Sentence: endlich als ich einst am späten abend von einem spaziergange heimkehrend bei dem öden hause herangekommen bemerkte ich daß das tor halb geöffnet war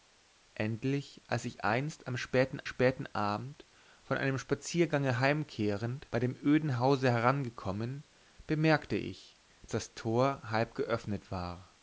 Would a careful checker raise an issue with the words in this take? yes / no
yes